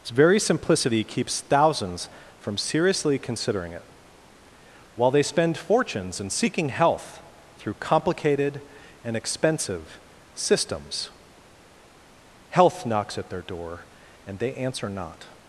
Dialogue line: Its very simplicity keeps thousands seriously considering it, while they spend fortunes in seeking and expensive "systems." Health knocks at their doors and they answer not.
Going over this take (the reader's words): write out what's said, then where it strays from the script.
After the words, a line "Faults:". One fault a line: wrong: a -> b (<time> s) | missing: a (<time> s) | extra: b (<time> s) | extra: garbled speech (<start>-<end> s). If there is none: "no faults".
Its very simplicity keeps thousands from seriously considering it, while they spend fortunes in seeking health through complicated and expensive "systems." Health knocks at their door and they answer not.
Faults:
extra: from (2.4 s)
extra: health through complicated (6.7 s)
wrong: doors -> door (13.4 s)